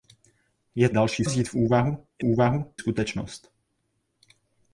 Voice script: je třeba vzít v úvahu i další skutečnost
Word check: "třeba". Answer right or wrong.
wrong